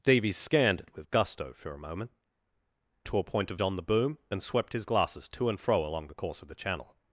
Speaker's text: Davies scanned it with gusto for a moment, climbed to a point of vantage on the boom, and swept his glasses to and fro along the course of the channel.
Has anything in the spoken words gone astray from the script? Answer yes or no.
yes